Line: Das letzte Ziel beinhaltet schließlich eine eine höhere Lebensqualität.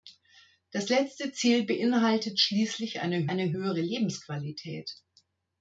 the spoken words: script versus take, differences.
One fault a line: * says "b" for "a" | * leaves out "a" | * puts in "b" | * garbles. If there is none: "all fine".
all fine